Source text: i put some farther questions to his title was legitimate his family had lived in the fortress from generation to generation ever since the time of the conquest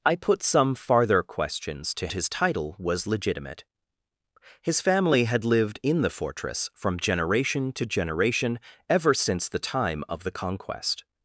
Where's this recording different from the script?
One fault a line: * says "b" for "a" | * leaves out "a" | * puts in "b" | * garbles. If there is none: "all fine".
all fine